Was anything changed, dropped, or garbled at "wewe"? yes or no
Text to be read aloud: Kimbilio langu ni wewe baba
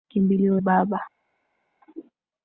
yes